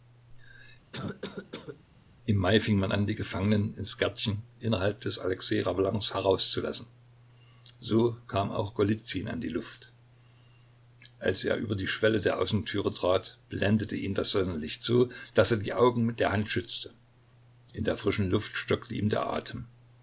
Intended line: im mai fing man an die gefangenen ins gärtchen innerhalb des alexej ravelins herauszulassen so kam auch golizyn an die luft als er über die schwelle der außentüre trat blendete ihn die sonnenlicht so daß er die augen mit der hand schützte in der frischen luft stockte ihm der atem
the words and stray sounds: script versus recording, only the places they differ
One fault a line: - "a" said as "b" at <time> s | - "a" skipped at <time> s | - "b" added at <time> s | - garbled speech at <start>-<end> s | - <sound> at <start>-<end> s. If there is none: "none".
- cough at 0.9-1.8 s
- "die" said as "das" at 14.1 s